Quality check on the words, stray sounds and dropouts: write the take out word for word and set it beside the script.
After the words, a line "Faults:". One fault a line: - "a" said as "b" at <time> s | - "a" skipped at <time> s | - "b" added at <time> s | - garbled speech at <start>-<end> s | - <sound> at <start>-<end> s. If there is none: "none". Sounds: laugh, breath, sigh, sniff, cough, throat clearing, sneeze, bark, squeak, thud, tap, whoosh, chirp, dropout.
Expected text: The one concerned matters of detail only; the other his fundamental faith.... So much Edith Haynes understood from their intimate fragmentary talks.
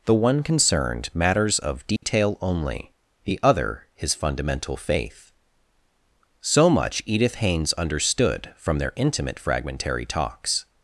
The one concerned matters of detail only; the other his fundamental faith.... So much Edith Haynes understood from their intimate fragmentary talks.
Faults:
- dropout at 2.0-2.0 s